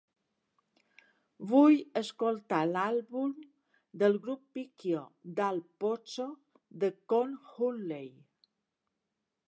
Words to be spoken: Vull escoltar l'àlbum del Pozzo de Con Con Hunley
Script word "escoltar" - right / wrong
right